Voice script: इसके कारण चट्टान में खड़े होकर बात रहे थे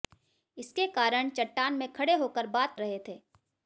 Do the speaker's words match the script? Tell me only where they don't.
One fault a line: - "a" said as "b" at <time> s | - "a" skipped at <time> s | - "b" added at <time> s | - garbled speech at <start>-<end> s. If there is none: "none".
none